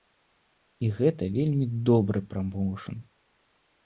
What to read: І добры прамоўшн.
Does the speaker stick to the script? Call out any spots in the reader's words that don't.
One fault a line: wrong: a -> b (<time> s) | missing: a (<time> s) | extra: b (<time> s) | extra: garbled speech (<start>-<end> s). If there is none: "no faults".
extra: гэта вельмі (1.0 s)